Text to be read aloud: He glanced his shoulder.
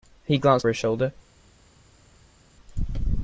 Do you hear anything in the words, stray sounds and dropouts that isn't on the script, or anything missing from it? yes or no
no